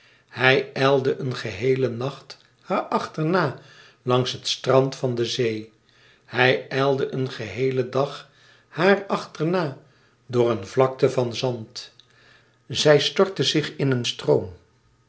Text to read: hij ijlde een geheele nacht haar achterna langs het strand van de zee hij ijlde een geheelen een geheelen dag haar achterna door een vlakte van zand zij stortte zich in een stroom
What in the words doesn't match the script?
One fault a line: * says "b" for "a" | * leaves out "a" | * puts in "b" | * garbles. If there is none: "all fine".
* leaves out "een geheelen"